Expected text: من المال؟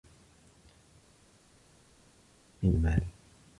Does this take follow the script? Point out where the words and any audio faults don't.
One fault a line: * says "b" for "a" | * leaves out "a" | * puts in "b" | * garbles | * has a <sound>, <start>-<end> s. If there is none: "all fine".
all fine